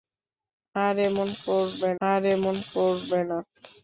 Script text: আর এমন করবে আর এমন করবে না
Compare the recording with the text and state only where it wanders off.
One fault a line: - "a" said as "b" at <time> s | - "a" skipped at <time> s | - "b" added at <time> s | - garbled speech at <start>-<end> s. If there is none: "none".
none